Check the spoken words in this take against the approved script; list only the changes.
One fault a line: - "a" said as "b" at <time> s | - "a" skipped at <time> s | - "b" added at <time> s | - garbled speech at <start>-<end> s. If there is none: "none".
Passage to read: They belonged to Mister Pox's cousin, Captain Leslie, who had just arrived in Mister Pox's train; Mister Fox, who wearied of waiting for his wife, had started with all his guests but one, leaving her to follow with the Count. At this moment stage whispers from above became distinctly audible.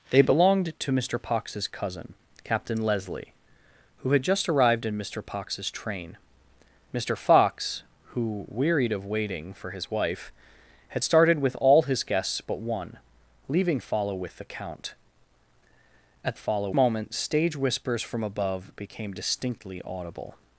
- "her to" skipped at 13.8 s
- "this" said as "follow" at 16.3 s